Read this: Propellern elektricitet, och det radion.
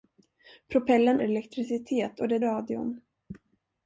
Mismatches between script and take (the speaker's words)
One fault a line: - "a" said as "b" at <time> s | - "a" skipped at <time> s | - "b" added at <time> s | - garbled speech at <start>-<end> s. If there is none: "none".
none